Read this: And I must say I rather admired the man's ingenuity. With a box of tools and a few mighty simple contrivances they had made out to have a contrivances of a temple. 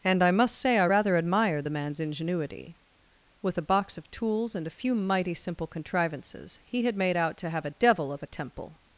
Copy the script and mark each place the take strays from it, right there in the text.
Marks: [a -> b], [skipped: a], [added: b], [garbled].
And I must say I rather admired the man's ingenuity. With a box of tools and a few mighty simple contrivances [they -> he] had made out to have a [contrivances -> devil] of a temple.